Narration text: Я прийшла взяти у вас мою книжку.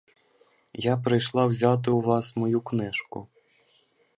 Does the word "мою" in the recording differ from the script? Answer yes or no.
no